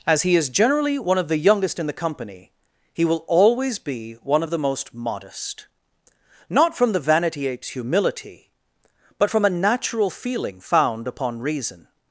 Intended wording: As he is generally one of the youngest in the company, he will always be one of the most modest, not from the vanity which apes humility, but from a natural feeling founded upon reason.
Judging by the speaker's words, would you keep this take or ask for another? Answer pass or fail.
fail